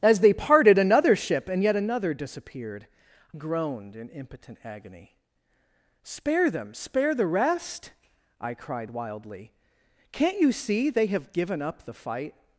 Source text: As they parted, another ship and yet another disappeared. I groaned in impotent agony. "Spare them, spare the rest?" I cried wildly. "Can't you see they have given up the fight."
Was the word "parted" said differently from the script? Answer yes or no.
no